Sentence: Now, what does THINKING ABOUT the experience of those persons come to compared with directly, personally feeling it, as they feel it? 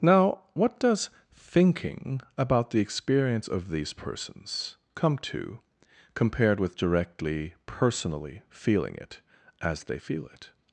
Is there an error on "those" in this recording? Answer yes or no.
yes